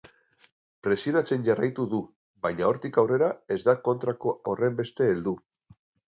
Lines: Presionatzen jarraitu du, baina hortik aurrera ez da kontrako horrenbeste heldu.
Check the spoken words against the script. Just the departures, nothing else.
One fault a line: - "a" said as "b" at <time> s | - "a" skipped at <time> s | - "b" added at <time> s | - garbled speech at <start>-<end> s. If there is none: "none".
none